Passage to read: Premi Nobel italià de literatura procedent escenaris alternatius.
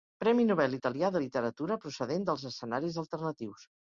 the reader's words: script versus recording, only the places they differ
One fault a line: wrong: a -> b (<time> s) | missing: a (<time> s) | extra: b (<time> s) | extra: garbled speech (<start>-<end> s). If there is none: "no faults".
extra: dels (2.3 s)